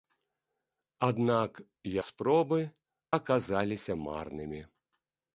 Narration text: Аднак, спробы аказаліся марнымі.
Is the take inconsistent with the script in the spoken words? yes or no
no